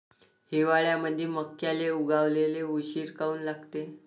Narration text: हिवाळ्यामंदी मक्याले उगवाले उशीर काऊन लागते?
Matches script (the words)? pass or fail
pass